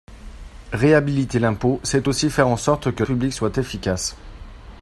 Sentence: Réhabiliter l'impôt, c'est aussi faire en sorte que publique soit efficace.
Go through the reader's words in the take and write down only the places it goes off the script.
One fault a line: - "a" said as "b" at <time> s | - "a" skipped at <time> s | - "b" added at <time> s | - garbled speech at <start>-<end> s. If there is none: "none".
none